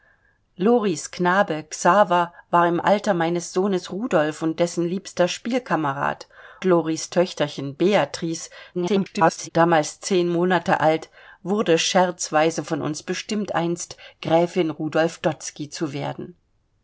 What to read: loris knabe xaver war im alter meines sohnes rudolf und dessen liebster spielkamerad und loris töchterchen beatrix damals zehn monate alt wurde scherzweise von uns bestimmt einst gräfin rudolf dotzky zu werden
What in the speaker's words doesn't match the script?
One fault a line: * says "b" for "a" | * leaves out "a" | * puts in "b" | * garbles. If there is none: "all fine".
* leaves out "und"
* garbles